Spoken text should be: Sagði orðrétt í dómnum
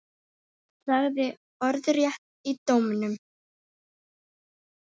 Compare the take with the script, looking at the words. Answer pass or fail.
pass